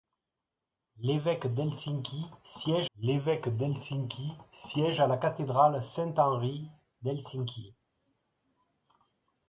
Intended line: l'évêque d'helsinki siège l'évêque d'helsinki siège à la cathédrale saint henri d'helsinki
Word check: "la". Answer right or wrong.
right